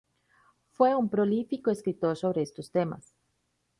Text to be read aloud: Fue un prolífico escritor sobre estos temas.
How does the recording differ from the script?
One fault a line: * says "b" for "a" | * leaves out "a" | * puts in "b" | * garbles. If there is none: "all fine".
all fine